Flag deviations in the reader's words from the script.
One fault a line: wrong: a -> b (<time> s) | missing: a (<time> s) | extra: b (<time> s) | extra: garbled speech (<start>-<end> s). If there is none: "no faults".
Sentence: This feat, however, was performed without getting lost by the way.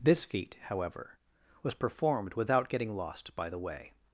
no faults